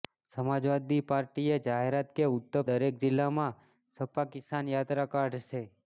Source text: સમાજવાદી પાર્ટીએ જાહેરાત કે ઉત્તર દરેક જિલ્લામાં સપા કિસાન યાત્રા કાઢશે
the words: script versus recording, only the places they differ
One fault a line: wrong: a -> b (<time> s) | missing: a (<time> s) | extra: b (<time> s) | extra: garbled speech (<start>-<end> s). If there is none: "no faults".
no faults